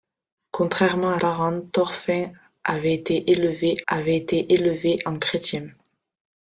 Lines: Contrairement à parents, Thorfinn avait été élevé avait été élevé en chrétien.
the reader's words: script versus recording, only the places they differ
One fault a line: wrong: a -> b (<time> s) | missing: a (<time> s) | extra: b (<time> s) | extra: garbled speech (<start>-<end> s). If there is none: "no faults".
no faults